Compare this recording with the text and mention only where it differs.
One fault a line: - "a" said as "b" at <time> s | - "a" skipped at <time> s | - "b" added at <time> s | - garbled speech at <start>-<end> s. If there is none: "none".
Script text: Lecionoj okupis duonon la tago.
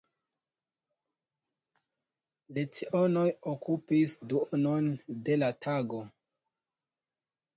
- "de" added at 5.3 s